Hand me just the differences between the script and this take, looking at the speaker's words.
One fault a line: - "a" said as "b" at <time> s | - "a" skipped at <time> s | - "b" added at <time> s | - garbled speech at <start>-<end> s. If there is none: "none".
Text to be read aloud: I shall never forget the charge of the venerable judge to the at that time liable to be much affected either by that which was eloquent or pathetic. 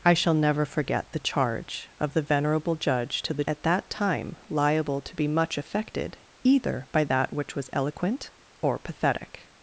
none